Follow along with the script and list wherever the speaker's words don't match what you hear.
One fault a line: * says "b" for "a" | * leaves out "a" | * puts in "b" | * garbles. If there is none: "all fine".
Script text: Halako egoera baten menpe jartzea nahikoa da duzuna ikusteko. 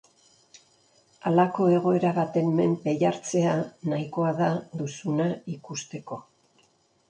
all fine